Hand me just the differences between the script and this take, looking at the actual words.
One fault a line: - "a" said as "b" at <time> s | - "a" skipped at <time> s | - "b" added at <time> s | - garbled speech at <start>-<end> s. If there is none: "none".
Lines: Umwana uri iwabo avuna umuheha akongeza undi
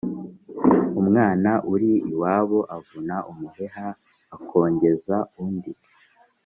none